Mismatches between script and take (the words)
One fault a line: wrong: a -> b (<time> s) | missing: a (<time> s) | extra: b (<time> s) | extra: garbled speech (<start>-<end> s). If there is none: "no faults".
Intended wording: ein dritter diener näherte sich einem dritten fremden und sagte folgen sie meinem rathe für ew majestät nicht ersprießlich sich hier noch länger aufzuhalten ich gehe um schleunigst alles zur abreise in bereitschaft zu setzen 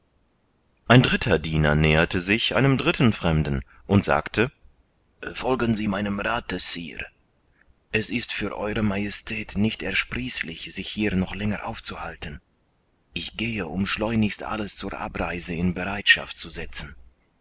extra: sire es ist (6.6 s)